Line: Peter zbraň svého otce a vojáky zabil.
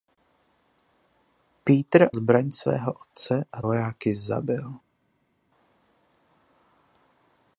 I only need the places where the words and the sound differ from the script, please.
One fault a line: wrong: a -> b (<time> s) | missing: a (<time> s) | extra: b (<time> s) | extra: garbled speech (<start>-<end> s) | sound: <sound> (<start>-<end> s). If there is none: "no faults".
no faults